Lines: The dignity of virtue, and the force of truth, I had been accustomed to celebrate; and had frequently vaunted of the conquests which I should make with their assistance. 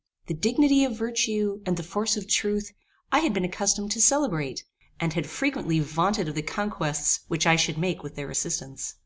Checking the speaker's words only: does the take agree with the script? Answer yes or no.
yes